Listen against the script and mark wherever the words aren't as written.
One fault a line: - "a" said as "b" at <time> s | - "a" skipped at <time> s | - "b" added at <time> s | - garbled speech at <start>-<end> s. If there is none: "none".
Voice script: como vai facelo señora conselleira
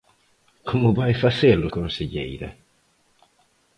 - "señora" skipped at 1.7 s